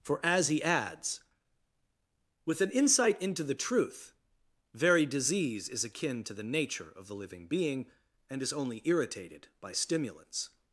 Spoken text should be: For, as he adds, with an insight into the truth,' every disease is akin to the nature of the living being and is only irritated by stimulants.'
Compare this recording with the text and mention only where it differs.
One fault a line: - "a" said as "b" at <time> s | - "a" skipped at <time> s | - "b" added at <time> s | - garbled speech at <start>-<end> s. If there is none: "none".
- "every" said as "very" at 4.7 s